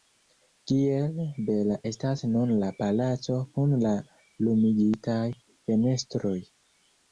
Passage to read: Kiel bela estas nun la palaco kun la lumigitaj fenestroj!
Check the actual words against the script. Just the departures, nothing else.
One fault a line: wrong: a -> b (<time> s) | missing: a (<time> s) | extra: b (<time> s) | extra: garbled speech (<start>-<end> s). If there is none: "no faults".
no faults